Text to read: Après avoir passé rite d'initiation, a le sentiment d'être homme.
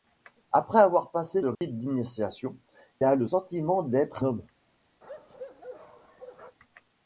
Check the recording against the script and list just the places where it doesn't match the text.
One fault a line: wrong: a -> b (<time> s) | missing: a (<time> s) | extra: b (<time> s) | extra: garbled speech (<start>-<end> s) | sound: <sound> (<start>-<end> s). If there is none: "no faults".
sound: dropout (1.6-1.6 s)
sound: bark (5.0-6.6 s)